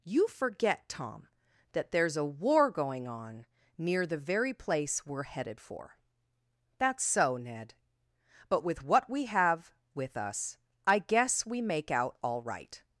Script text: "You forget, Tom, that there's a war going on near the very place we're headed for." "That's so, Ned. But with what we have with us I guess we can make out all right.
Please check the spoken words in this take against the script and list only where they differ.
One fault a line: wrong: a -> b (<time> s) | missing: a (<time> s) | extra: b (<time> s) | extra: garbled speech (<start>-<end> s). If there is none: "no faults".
missing: can (11.6 s)